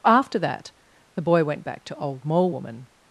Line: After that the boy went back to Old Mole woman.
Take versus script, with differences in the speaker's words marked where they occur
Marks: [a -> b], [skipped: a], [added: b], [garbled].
After that the boy went back to Old Mole woman.